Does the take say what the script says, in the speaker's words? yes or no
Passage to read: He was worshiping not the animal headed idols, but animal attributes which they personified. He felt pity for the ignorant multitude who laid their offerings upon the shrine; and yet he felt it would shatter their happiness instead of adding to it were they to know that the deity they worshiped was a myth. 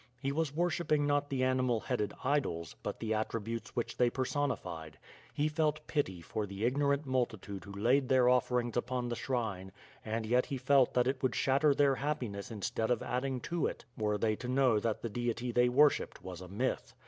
no